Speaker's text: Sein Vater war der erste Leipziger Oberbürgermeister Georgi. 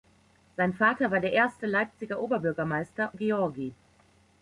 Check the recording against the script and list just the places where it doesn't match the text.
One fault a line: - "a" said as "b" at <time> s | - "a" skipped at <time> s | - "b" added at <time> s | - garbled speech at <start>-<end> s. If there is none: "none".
none